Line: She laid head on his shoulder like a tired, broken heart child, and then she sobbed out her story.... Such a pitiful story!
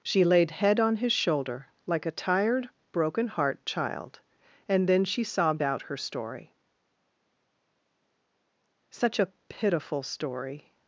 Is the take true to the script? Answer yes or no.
yes